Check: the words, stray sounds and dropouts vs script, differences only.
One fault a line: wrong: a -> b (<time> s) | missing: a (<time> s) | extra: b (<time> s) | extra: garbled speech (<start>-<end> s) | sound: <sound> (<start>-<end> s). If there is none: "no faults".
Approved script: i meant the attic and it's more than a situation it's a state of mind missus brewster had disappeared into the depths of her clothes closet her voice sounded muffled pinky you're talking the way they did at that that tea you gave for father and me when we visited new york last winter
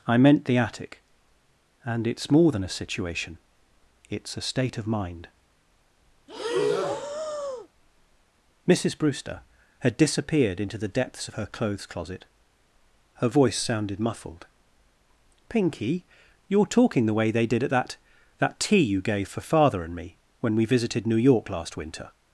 sound: breath (6.3-7.7 s)